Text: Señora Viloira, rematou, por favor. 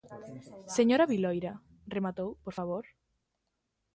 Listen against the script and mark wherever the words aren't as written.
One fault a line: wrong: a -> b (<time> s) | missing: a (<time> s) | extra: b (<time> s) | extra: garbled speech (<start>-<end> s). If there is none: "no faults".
no faults